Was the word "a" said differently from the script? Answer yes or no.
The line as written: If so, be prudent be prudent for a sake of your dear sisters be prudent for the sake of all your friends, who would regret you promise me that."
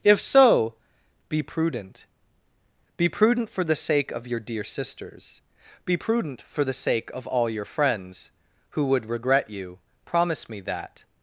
yes